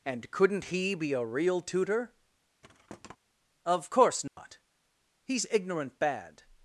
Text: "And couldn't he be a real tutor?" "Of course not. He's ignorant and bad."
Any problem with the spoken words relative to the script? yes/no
yes